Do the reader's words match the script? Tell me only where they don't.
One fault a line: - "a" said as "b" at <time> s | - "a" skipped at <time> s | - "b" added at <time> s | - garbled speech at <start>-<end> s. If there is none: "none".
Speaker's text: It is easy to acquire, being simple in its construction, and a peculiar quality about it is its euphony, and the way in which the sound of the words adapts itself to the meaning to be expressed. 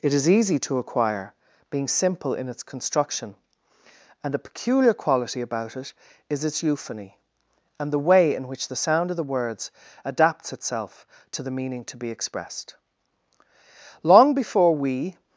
- "Long before we" added at 14.0 s